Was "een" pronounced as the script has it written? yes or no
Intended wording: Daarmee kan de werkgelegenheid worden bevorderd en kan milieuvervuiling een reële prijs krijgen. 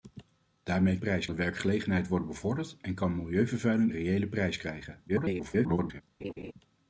no